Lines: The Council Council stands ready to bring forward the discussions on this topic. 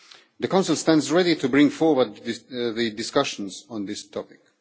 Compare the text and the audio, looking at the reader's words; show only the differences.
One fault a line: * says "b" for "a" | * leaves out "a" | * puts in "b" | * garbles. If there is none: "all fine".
* leaves out "Council"